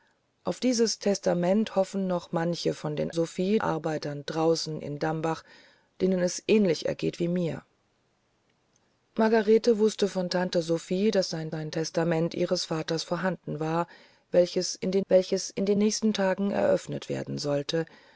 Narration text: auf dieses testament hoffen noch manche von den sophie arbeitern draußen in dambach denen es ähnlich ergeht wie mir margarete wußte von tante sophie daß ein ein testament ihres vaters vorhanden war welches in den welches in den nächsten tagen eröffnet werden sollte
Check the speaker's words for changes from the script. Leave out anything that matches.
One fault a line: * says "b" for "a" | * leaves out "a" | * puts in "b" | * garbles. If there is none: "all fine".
all fine